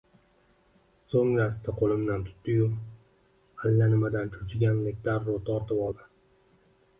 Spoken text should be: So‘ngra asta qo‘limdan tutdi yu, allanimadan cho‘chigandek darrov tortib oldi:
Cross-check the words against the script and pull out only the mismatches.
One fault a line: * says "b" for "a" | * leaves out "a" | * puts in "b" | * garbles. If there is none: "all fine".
all fine